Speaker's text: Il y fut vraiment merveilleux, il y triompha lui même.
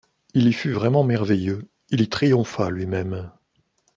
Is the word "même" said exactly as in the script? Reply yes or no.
yes